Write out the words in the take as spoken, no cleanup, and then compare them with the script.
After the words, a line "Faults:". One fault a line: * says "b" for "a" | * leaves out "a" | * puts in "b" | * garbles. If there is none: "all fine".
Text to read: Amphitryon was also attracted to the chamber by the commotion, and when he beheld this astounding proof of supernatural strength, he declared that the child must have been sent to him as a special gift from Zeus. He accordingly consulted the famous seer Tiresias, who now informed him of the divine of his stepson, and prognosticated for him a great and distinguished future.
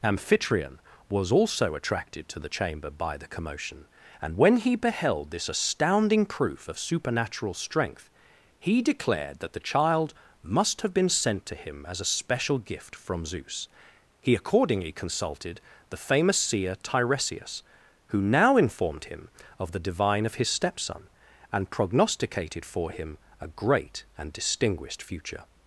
Amphitryon was also attracted to the chamber by the commotion, and when he beheld this astounding proof of supernatural strength, he declared that the child must have been sent to him as a special gift from Zeus. He accordingly consulted the famous seer Tiresias, who now informed him of the divine of his stepson, and prognosticated for him a great and distinguished future.
Faults:
all fine